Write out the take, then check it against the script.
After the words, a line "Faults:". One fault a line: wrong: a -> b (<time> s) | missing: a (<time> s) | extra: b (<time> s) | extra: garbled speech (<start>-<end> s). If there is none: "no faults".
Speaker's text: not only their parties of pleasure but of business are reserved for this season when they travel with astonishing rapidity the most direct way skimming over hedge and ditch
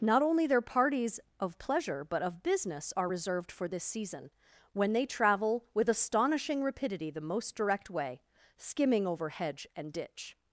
not only their parties of pleasure but of business are reserved for this season when they travel with astonishing rapidity the most direct way skimming over hedge and ditch
Faults:
no faults